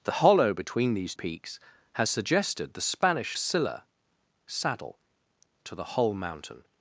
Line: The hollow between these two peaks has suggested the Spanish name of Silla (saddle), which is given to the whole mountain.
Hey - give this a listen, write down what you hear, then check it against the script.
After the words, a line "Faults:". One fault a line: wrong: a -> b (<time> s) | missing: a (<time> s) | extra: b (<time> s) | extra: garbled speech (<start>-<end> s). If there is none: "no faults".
The hollow between these peaks has suggested the Spanish Silla (saddle), to the whole mountain.
Faults:
missing: two (1.1 s)
missing: name of (3.4 s)
missing: which is given (5.0 s)